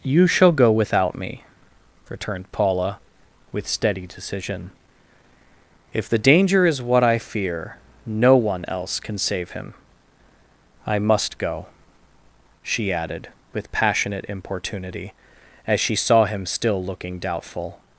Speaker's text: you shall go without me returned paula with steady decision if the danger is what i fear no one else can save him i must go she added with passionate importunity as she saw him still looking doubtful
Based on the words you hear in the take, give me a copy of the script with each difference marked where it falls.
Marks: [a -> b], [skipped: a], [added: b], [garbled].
you shall go without me returned paula with steady decision if the danger is what i fear no one else can save him i must go she added with passionate importunity as she saw him still looking doubtful